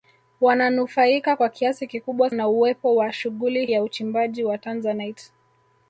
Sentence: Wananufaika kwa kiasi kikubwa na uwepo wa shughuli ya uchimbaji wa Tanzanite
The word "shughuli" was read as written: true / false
true